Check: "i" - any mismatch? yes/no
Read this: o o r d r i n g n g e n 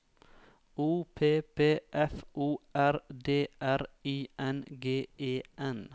no